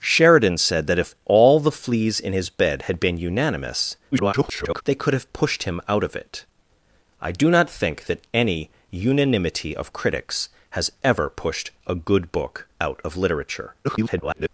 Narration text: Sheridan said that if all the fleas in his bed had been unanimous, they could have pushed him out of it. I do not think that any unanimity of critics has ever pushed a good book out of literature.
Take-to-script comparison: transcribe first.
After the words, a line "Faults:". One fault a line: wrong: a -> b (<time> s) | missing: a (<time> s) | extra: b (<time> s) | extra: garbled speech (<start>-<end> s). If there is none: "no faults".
Sheridan said that if all the fleas in his bed had been unanimous, [garbled] they could have pushed him out of it. I do not think that any unanimity of critics has ever pushed a good book out of literature. [garbled]
Faults:
extra: garbled speech (4.1-4.8 s)
extra: garbled speech (13.8-14.5 s)